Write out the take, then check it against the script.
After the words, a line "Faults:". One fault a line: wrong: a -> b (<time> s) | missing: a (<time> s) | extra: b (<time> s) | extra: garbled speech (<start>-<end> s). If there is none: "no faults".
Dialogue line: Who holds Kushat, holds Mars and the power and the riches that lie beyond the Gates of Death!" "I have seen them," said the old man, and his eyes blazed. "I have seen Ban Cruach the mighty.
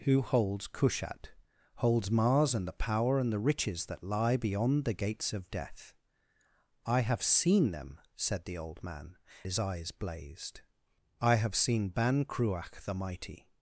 Who holds Kushat, holds Mars and the power and the riches that lie beyond the Gates of Death!" "I have seen them," said the old man, his eyes blazed. "I have seen Ban Cruach the mighty.
Faults:
missing: and (9.2 s)